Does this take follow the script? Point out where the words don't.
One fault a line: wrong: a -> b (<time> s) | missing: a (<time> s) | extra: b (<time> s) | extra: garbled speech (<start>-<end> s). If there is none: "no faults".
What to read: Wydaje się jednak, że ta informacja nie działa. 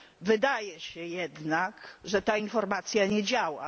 no faults